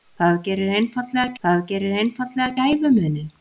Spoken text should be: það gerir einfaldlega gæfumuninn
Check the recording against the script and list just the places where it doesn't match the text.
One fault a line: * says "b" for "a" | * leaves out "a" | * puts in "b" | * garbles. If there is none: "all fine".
* puts in "það gerir einfaldlega"